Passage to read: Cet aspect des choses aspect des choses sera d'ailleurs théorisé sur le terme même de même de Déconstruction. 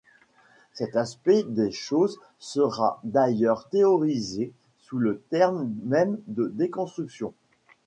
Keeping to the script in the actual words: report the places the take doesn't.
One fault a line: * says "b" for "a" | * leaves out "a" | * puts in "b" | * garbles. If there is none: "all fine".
* leaves out "aspect des choses"
* says "sous" for "sur"
* leaves out "même de"